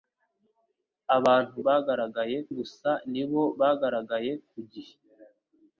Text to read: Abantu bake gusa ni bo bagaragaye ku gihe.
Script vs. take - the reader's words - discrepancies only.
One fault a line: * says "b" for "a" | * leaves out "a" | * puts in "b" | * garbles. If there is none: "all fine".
* says "bagaragaye" for "bake"